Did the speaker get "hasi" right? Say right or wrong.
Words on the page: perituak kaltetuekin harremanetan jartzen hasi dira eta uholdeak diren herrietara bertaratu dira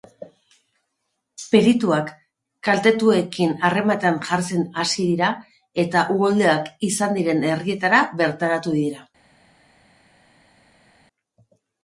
right